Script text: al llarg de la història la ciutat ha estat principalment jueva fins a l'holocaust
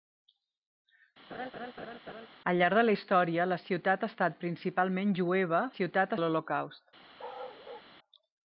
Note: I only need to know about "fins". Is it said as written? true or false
false